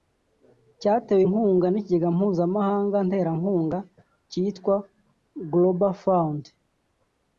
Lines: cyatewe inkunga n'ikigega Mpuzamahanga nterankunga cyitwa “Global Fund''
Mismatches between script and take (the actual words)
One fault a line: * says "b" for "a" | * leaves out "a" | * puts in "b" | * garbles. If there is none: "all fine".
all fine